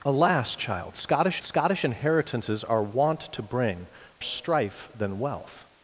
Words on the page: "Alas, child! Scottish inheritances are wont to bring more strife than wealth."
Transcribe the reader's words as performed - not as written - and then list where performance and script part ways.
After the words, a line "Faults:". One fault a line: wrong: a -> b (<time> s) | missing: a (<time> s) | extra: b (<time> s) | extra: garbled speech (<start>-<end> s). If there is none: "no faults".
"Alas, child! Scottish scottish inheritances are wont to bring strife than wealth."
Faults:
extra: scottish (1.4 s)
missing: more (3.9 s)